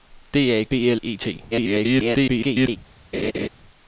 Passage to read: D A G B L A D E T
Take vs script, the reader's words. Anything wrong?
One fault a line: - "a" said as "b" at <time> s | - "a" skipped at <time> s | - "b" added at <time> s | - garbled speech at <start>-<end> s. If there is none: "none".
- "G" skipped at 0.7 s
- "A D" skipped at 1.0 s
- garbled speech at 1.5-2.8 s